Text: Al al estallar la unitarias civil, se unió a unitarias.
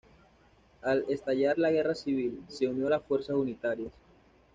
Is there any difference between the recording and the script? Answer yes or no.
yes